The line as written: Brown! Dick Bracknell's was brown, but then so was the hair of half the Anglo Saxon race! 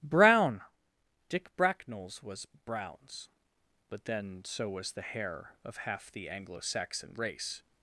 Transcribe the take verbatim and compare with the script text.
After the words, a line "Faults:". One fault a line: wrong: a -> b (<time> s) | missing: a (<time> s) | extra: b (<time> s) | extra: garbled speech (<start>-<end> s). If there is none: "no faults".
Brown! Dick Bracknell's was browns, but then so was the hair of half the Anglo Saxon race!
Faults:
wrong: brown -> browns (2.6 s)